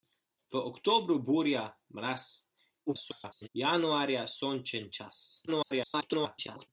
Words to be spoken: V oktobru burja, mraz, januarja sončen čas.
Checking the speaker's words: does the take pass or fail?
fail